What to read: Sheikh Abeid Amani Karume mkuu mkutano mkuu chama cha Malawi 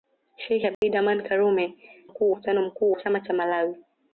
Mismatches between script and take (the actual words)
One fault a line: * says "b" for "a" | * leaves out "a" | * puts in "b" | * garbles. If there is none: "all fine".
all fine